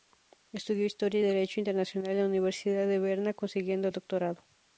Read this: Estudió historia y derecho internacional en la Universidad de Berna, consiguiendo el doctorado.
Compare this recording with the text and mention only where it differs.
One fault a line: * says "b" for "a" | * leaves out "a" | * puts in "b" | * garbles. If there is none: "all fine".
all fine